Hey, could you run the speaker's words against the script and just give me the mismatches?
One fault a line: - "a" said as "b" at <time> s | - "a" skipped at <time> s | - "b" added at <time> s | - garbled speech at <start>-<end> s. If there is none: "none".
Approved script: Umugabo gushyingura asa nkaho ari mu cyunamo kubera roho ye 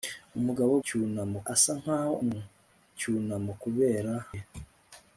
- "gushyingura" said as "cyunamo" at 0.9 s
- "ari" skipped at 2.1 s
- "roho" skipped at 4.1 s